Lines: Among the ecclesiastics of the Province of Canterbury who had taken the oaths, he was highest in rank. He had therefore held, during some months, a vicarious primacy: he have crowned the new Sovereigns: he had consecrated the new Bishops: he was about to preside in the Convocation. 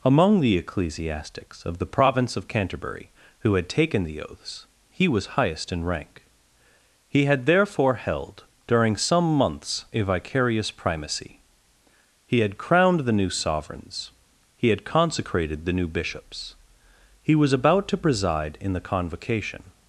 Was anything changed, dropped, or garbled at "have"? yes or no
yes